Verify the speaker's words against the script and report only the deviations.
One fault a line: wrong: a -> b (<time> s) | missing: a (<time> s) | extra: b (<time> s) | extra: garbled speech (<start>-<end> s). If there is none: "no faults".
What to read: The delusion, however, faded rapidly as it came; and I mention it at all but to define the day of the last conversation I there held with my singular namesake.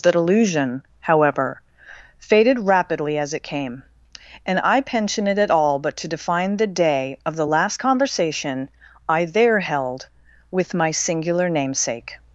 wrong: mention -> pension (4.8 s)